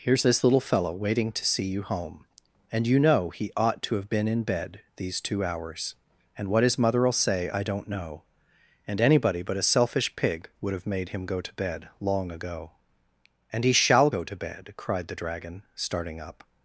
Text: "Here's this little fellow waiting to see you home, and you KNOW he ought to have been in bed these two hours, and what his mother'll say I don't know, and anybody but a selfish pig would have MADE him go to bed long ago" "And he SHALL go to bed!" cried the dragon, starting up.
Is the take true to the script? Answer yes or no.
yes